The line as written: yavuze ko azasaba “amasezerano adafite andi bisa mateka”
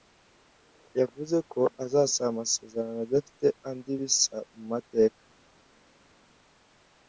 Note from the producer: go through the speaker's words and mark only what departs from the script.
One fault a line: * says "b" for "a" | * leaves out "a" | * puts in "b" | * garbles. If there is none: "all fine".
* puts in "mu"